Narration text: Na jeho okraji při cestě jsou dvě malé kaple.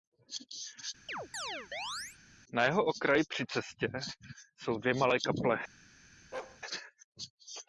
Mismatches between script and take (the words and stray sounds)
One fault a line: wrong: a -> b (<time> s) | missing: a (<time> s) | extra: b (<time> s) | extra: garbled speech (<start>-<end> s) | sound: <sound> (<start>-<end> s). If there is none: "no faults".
sound: chirp (1.1-2.2 s)
sound: bark (6.3-6.6 s)